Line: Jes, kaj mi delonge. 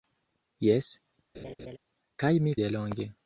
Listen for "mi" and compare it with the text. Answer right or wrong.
right